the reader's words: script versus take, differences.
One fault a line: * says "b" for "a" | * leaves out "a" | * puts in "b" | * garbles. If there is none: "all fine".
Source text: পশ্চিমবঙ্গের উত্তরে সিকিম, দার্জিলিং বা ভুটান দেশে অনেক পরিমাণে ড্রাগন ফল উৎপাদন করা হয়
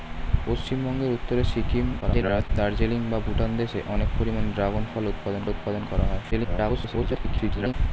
* garbles
* puts in "উৎপাদন"
* garbles